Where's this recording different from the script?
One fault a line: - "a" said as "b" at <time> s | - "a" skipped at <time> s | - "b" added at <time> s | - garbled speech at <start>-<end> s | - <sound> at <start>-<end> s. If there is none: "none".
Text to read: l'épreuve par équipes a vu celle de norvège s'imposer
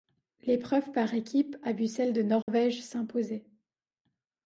- dropout at 2.4-2.5 s